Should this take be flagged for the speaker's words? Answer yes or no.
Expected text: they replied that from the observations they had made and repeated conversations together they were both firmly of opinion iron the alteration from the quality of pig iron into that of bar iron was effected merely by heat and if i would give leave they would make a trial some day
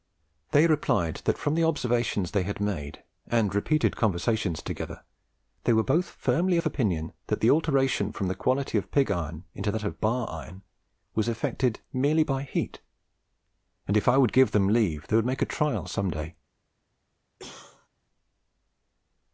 yes